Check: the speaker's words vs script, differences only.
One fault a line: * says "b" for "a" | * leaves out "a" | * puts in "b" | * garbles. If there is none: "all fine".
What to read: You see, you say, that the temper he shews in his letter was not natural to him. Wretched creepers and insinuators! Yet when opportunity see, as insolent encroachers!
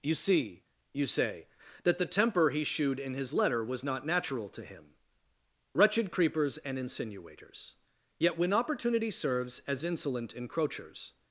* says "shewed" for "shews"
* says "serves" for "see"